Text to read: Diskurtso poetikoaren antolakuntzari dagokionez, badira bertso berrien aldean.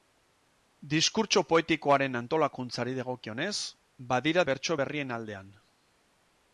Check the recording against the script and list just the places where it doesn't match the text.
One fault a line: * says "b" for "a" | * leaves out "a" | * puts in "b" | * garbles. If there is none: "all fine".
all fine